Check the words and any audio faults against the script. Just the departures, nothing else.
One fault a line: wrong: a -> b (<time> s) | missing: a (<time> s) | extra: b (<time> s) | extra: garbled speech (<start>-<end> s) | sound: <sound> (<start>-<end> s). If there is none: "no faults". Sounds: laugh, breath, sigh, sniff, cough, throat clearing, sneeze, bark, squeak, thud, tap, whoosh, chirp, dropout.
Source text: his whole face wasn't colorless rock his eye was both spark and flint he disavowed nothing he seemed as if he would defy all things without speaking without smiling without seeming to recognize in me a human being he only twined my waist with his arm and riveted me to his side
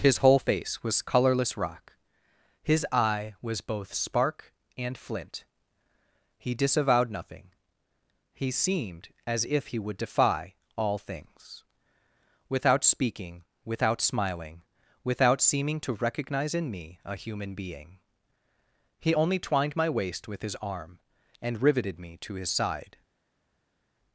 wrong: wasn't -> was (0.8 s)